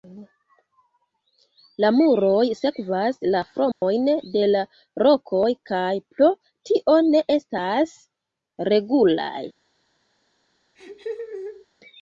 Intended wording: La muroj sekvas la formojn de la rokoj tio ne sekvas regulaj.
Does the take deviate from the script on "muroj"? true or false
false